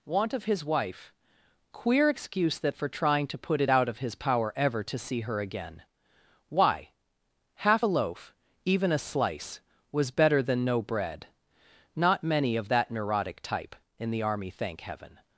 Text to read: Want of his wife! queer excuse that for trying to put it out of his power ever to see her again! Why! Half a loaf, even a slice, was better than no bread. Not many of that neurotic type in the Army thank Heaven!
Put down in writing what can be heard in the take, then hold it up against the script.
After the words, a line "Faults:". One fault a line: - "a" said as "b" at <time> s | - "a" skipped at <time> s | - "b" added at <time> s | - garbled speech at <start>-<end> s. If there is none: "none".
Want of his wife! queer excuse that for trying to put it out of his power ever to see her again! Why! Half a loaf, even a slice, was better than no bread. Not many of that neurotic type in the Army thank Heaven!
Faults:
none